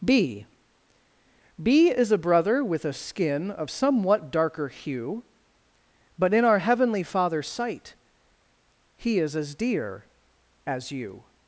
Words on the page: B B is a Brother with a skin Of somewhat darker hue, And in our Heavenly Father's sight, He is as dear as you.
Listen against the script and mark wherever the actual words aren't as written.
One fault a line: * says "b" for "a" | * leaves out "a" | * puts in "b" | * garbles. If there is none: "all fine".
* says "But" for "And"